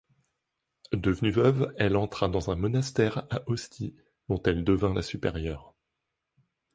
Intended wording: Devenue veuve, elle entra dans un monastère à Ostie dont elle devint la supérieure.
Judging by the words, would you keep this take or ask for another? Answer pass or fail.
pass